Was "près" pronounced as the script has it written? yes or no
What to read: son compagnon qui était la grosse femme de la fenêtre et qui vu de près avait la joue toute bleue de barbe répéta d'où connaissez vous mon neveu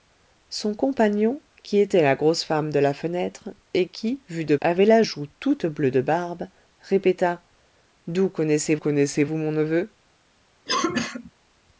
no